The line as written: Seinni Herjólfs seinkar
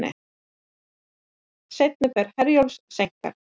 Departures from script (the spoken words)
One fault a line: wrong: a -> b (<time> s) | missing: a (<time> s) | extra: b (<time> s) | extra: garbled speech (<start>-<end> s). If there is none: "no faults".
extra: ferð (2.2 s)